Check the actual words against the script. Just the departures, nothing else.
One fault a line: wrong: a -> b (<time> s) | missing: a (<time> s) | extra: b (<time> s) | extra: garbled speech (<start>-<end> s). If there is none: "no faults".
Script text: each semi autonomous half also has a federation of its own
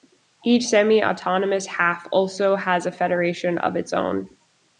no faults